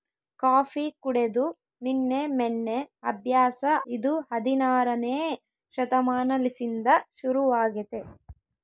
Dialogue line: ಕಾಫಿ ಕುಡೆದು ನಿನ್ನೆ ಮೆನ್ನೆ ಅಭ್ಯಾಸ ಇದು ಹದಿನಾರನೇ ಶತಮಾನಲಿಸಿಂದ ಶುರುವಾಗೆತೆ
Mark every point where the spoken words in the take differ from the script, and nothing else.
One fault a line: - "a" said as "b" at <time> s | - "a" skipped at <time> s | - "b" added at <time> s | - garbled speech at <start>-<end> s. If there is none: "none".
none